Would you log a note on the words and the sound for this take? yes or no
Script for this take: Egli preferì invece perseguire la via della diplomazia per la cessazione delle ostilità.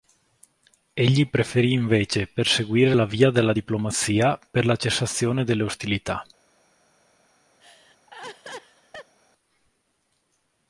yes